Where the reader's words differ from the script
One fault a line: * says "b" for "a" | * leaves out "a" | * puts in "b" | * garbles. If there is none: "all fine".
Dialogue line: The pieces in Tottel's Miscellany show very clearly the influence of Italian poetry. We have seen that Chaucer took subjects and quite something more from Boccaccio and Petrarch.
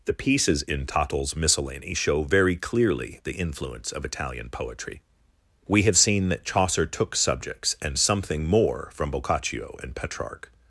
* leaves out "quite"